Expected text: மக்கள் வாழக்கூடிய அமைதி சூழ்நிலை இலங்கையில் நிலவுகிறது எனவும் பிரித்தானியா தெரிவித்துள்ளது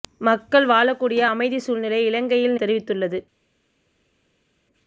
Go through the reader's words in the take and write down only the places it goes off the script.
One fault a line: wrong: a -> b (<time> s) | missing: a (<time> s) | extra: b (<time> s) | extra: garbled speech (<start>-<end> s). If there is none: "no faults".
missing: நிலவுகிறது எனவும் பிரித்தானியா (2.6 s)